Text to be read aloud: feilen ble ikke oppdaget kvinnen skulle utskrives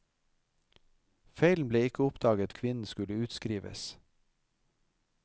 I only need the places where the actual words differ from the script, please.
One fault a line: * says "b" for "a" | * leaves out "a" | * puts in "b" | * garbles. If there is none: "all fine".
all fine